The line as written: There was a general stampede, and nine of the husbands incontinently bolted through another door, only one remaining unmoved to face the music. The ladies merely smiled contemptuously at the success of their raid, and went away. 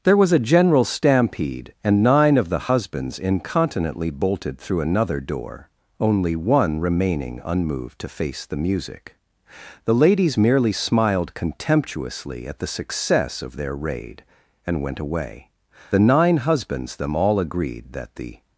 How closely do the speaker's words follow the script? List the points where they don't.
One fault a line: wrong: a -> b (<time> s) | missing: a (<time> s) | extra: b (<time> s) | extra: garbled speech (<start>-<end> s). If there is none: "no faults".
extra: The nine husbands them all agreed that the (15.9 s)